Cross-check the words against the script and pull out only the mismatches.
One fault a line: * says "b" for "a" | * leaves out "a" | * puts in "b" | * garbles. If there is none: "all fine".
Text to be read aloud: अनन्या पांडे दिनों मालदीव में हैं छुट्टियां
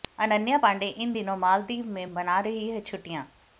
* puts in "इन"
* puts in "मना रही"